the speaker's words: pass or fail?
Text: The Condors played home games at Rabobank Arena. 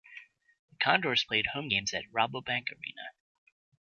pass